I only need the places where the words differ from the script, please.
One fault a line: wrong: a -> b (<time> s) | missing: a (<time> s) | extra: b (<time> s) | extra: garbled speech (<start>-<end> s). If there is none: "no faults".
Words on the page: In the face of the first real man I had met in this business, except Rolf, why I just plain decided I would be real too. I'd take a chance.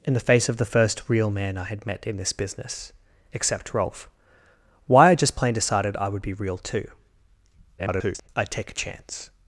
extra: garbled speech (7.8-8.3 s)